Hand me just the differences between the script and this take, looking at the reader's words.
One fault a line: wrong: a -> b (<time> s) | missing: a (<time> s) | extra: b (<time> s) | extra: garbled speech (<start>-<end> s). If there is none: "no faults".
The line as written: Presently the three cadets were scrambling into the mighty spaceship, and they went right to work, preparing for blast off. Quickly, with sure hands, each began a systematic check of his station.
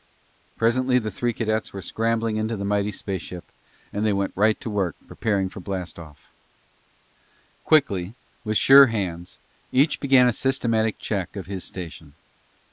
no faults